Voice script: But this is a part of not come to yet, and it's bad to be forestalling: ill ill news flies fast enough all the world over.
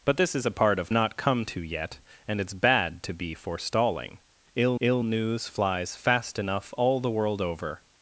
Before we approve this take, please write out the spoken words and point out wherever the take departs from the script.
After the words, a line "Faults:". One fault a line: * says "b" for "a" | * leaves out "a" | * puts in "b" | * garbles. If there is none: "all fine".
But this is a part of not come to yet, and it's bad to be forestalling: ill ill news flies fast enough all the world over.
Faults:
all fine